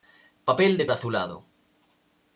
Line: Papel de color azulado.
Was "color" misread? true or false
true